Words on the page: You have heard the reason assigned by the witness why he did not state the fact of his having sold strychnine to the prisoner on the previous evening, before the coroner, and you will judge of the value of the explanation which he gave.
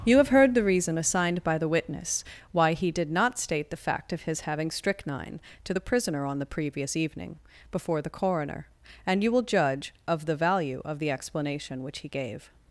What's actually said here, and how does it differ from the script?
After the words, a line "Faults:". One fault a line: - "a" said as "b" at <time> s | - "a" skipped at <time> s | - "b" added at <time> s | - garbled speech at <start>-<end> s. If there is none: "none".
You have heard the reason assigned by the witness why he did not state the fact of his having strychnine to the prisoner on the previous evening, before the coroner, and you will judge of the value of the explanation which he gave.
Faults:
- "sold" skipped at 4.7 s